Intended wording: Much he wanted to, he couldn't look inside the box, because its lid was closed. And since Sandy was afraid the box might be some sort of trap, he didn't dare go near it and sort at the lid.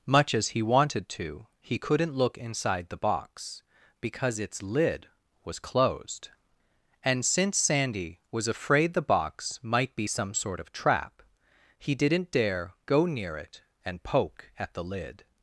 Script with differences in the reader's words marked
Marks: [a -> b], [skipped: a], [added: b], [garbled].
Much [added: as] he wanted to, he couldn't look inside the box, because its lid was closed. And since Sandy was afraid the box might be some sort of trap, he didn't dare go near it and [sort -> poke] at the lid.